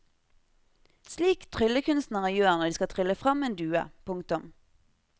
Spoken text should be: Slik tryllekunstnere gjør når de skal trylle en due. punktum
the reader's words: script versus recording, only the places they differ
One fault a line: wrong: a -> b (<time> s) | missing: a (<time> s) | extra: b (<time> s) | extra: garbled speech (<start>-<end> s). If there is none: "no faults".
extra: frem (3.2 s)